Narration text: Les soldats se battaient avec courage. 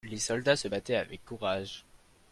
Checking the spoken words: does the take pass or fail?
pass